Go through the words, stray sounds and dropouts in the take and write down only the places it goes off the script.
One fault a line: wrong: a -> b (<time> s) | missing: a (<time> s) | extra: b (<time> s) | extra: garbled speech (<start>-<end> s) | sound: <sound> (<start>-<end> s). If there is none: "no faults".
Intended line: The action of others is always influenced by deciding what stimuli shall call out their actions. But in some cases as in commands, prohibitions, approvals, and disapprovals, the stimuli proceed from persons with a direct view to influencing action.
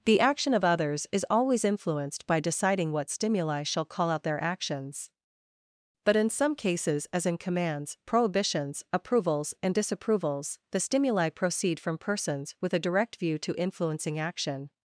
no faults